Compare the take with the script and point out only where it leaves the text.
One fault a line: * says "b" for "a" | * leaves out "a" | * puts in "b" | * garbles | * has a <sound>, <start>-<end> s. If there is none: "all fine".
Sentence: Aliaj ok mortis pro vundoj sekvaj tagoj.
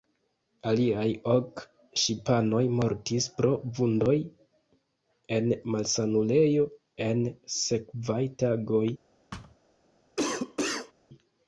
* puts in "ŝipanoj"
* puts in "en malsanulejo en"
* has a thud, 9.3-9.6 s
* has a cough, 10.2-10.9 s